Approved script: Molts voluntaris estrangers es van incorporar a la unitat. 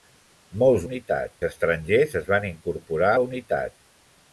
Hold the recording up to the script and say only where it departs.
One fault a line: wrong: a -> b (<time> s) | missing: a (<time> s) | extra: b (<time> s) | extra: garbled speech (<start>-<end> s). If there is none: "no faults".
wrong: voluntaris -> unitat (0.8 s)
missing: a (3.1 s)